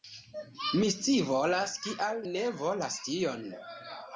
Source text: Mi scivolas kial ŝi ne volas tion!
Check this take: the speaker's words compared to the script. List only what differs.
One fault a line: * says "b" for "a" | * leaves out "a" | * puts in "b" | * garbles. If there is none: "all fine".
* leaves out "ŝi"